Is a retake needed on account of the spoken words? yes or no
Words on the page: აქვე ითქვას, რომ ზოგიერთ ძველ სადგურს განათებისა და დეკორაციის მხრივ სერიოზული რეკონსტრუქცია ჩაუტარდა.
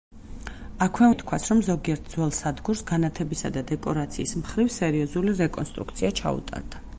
no